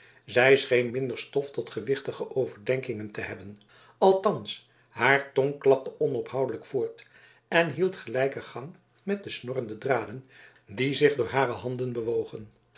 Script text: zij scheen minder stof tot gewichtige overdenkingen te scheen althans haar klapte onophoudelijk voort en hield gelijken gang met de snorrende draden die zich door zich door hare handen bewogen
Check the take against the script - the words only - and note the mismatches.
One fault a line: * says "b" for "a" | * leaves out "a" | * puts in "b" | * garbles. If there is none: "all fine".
* says "hebben" for "scheen"
* puts in "tong"
* leaves out "zich door"